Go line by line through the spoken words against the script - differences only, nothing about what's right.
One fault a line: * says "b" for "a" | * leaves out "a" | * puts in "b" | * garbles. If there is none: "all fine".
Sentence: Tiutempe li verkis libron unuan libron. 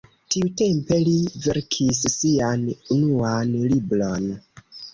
* says "sian" for "libron"